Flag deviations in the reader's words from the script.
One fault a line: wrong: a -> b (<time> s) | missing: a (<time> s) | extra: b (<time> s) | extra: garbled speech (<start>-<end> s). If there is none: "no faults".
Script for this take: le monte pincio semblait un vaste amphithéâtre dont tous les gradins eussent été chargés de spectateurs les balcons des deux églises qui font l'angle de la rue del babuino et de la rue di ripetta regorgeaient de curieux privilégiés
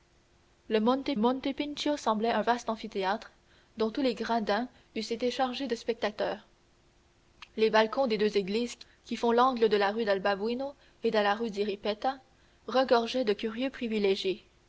extra: monte (1.2 s)